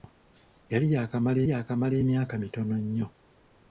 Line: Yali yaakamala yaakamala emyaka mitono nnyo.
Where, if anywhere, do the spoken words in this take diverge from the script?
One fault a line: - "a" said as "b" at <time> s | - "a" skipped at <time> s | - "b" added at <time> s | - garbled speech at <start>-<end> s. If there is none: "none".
none